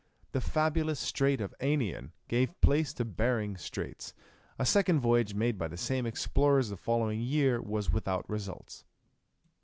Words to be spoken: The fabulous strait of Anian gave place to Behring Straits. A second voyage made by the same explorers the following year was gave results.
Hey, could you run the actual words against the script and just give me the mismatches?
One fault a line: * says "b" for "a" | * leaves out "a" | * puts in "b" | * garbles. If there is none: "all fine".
* says "without" for "gave"